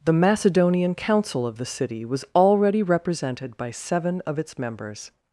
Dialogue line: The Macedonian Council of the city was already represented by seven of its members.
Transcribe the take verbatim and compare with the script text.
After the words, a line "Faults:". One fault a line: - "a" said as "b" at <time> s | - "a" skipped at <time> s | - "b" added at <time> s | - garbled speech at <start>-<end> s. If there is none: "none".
The Macedonian Council of the city was already represented by seven of its members.
Faults:
none